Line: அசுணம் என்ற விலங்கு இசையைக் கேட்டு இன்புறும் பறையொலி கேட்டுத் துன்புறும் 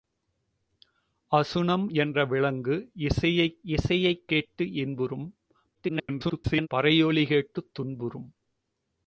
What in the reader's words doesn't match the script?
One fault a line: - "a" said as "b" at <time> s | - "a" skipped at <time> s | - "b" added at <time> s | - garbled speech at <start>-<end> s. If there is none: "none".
- "இசையைக்" added at 3.6 s
- garbled speech at 5.7-6.7 s